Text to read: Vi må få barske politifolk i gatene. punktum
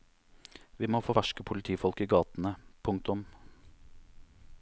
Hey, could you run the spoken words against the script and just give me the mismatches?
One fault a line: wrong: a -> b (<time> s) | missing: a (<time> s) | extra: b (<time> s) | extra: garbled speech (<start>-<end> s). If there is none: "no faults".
no faults